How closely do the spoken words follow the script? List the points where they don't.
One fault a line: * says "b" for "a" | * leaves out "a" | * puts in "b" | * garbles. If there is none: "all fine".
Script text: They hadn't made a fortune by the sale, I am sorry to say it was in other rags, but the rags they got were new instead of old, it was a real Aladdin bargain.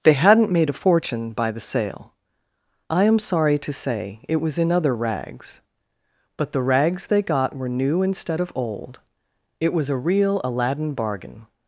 all fine